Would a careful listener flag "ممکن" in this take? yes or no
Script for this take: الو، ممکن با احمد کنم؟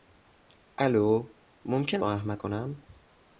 no